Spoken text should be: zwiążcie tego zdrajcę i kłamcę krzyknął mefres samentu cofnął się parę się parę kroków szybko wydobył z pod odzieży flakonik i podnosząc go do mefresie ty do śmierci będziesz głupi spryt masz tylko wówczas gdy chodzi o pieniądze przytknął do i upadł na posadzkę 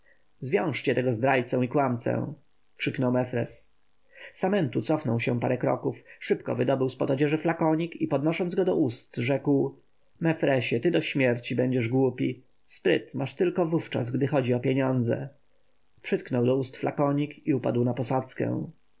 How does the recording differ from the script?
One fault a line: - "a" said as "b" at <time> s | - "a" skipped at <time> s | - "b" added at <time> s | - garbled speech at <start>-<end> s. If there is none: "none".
- "się parę" skipped at 5.6 s
- "ust rzekł" added at 8.8 s
- "ust flakonik" added at 16.6 s